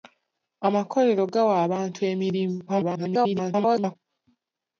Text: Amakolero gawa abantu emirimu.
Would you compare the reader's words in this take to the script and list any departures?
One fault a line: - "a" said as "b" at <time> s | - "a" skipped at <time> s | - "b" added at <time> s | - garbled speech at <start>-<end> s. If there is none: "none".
- garbled speech at 2.7-4.0 s